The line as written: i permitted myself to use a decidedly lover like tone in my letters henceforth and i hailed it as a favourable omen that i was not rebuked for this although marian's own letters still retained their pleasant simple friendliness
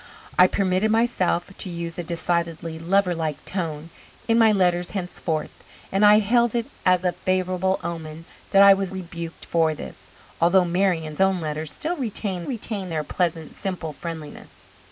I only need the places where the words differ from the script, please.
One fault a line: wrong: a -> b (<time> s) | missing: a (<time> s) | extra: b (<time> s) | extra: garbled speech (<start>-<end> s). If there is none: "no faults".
missing: not (8.9 s)
extra: retained (12.5 s)